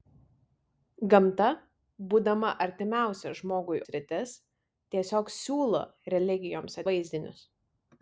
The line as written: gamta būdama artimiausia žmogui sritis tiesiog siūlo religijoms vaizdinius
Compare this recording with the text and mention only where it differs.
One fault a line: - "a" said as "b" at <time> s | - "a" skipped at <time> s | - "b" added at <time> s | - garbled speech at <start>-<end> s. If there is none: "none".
none